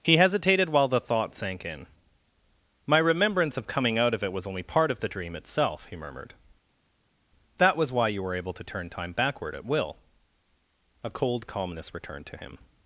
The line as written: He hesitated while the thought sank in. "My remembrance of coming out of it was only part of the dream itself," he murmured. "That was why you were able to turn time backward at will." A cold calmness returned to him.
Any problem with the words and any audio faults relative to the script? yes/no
no